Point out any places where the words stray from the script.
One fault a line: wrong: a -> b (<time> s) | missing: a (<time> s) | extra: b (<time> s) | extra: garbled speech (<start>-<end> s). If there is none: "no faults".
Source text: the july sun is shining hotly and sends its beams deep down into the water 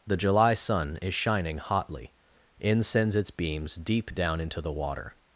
wrong: and -> in (2.6 s)